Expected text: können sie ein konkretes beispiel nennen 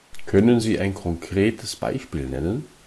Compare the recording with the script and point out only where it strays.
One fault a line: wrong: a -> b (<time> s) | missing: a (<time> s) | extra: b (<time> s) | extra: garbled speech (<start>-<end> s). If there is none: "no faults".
no faults